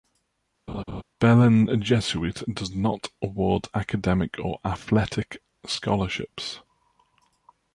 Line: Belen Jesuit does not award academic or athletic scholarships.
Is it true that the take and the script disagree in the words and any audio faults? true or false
true